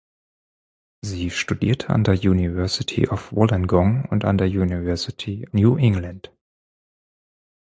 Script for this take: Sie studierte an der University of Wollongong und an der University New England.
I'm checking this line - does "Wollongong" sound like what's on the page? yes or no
yes